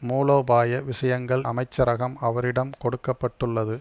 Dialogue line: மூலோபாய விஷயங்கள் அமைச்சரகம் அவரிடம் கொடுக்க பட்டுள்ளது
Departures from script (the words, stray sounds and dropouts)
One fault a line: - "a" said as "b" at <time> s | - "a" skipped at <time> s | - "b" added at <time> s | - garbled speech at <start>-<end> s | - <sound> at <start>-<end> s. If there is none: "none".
none